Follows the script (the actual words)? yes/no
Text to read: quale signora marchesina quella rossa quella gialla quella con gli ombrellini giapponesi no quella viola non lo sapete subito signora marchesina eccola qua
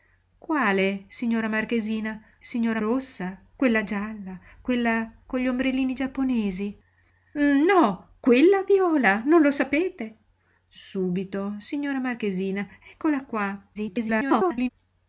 no